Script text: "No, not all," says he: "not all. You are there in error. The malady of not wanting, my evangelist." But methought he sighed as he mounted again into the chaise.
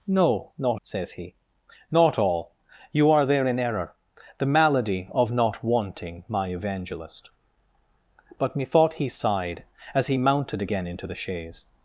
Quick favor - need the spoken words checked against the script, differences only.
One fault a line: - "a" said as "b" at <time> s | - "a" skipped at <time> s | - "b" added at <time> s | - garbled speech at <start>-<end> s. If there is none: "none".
- "all" skipped at 0.8 s